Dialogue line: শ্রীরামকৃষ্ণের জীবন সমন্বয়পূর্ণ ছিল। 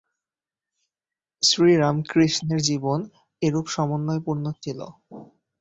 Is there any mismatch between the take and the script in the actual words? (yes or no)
yes